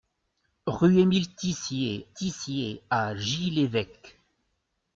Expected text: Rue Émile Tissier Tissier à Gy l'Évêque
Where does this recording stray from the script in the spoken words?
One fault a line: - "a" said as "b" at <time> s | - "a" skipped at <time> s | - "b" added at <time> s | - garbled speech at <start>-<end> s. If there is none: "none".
none